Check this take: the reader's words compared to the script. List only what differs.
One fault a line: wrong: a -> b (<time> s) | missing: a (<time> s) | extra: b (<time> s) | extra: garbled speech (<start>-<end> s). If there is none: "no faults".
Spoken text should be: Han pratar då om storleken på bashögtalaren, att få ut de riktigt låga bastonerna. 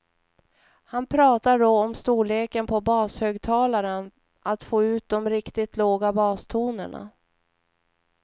no faults